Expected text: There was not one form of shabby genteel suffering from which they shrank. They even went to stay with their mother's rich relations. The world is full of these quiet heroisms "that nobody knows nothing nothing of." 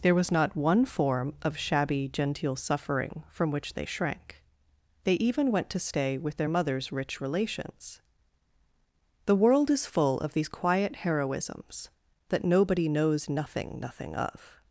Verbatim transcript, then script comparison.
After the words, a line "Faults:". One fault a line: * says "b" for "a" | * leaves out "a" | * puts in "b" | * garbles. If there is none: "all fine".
There was not one form of shabby genteel suffering from which they shrank. They even went to stay with their mother's rich relations. The world is full of these quiet heroisms "that nobody knows nothing nothing of."
Faults:
all fine